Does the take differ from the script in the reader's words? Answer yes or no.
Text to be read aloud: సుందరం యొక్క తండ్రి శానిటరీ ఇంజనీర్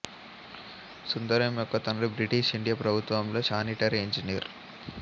yes